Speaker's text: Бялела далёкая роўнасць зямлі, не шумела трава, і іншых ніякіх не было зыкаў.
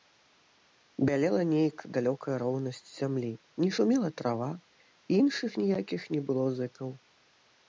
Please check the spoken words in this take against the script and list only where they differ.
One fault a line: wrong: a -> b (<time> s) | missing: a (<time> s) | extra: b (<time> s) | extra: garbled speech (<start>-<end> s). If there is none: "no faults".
extra: нейк (1.5 s)